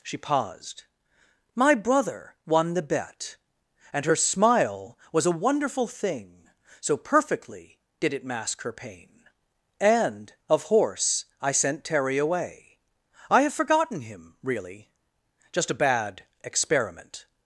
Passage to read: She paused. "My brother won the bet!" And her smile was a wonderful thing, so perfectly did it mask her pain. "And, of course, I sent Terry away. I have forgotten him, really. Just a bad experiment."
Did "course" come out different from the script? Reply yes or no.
yes